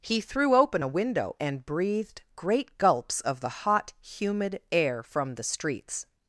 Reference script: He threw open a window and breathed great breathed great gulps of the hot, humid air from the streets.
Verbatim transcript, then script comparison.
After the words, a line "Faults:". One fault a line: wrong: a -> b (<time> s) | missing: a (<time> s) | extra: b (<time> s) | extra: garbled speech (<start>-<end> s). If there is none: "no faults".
He threw open a window and breathed great gulps of the hot, humid air from the streets.
Faults:
missing: breathed great (2.8 s)